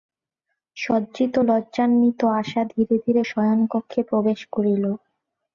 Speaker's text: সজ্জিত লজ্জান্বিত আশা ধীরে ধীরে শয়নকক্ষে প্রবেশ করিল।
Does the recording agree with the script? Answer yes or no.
yes